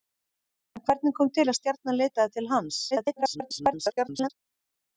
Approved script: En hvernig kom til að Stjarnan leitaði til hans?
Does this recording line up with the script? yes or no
no